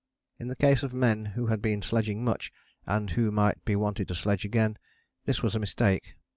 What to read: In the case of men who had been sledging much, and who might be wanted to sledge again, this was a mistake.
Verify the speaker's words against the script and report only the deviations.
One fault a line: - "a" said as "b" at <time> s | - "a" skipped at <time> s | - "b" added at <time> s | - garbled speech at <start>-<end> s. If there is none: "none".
none